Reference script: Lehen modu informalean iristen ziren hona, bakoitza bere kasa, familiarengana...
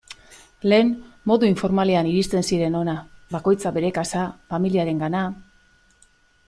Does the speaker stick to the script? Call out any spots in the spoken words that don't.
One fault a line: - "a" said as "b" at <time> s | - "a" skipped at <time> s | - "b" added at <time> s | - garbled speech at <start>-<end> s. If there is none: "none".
none